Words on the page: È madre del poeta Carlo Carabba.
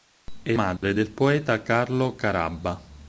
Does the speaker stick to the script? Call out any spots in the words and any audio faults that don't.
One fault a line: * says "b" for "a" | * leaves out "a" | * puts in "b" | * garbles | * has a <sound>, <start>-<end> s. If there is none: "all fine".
* has a dropout, 0.8-0.8 s